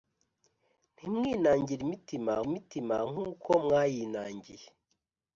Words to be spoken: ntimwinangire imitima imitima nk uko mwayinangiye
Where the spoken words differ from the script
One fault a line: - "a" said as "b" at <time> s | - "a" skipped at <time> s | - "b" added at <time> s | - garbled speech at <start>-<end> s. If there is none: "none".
none